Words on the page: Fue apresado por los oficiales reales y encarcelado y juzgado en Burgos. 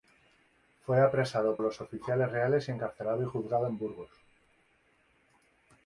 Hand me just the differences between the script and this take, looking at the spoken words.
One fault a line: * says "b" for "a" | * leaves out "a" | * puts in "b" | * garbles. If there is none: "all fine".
* leaves out "por"